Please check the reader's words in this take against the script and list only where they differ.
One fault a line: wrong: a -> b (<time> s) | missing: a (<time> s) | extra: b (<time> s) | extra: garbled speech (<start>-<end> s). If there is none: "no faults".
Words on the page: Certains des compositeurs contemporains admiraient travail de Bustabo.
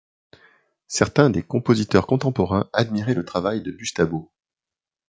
extra: le (3.1 s)